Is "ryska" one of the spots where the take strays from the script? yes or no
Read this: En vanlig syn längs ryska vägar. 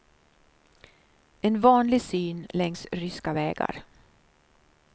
no